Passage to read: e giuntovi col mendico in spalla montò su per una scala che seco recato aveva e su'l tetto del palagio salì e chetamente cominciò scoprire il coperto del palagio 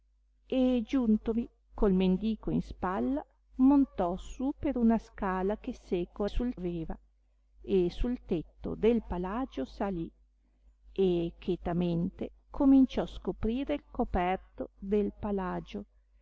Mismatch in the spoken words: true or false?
true